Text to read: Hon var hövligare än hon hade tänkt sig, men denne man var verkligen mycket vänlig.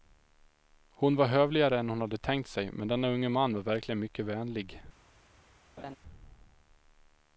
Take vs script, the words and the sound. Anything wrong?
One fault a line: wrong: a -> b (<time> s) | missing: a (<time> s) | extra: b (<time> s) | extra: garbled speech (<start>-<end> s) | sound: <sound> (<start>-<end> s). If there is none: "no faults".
extra: unge (3.1 s)
sound: laugh (5.8-6.0 s)